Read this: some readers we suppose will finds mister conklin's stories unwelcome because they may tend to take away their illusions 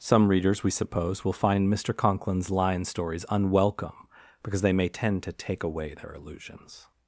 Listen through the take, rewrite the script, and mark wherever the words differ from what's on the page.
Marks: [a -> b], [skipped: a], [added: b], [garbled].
some readers we suppose will [finds -> find] mister conklin's [added: lion] stories unwelcome because they may tend to take away their illusions